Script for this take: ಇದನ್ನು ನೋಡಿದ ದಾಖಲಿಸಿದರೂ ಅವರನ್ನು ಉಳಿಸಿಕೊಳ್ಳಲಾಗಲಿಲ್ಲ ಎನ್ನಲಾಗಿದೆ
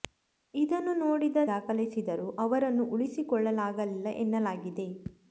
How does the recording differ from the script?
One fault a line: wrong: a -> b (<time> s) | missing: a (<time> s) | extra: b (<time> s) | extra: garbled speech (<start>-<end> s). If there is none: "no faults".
no faults